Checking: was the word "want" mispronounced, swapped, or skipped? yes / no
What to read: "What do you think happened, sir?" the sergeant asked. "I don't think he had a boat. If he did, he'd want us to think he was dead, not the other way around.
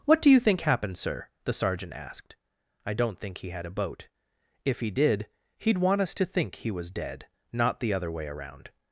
no